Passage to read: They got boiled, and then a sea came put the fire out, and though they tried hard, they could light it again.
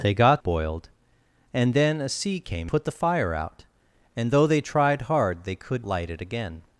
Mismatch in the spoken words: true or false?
false